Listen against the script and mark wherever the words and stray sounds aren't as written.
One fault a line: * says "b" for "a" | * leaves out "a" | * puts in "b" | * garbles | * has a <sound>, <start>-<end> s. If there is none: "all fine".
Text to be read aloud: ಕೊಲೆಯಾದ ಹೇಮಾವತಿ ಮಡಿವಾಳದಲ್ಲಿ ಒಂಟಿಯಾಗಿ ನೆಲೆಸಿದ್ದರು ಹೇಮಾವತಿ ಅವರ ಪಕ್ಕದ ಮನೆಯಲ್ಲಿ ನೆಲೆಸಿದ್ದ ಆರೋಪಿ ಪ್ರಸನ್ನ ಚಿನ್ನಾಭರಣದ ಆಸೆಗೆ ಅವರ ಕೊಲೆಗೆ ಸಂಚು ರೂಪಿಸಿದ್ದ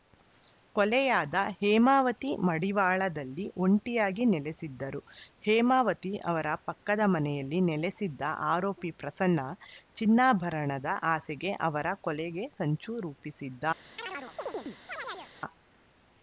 * has a chirp, 14.0-15.3 s